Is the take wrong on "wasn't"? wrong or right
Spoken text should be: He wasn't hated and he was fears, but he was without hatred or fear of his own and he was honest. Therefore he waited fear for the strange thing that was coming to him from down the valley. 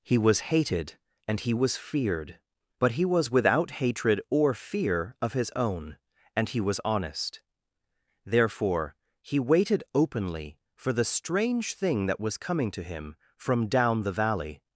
wrong